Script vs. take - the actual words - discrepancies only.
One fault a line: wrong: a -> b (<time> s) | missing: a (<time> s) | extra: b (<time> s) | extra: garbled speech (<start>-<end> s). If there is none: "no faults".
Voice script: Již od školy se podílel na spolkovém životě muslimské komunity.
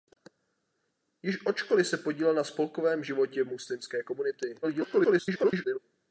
extra: garbled speech (4.6-5.8 s)